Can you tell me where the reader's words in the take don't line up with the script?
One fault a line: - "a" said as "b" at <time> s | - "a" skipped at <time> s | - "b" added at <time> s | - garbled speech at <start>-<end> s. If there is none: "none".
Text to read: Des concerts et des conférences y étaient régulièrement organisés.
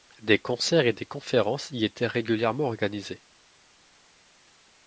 none